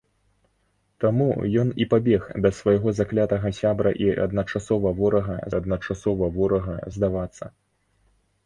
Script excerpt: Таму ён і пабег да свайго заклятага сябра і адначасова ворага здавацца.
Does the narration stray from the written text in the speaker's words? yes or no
yes